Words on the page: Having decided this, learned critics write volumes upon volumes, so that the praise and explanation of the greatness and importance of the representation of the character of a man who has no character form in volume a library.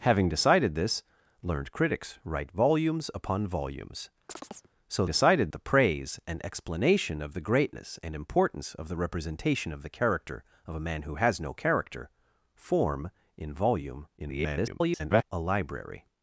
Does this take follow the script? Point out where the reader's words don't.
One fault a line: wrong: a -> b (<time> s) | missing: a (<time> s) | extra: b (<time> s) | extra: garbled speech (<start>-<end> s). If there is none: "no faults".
wrong: that -> decided (5.1 s)
extra: garbled speech (14.2-15.2 s)